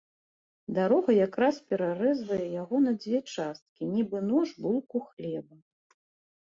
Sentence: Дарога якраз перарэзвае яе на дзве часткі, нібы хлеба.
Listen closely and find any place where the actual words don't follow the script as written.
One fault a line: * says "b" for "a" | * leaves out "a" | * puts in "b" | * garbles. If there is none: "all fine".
* says "яго" for "яе"
* puts in "нож булку"